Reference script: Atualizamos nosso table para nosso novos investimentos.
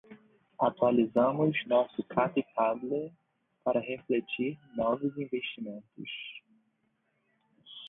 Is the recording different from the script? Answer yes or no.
yes